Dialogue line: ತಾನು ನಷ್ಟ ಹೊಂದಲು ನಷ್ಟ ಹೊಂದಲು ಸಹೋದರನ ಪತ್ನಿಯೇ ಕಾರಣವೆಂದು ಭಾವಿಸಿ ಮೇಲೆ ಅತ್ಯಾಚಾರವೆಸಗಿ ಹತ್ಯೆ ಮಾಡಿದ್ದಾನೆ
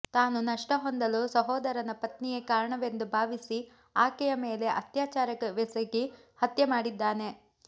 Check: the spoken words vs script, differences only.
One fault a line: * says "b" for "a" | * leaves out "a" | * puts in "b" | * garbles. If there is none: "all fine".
* leaves out "ನಷ್ಟ ಹೊಂದಲು"
* puts in "ಆಕೆಯ"